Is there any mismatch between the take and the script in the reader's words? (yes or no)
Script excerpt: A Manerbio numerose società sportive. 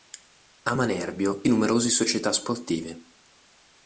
no